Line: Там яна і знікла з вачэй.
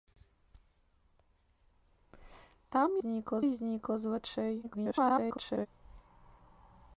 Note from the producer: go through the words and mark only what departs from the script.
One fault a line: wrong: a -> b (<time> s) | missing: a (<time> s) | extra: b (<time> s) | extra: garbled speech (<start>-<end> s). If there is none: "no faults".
wrong: яна -> знікла (3.0 s)
extra: garbled speech (4.6-5.7 s)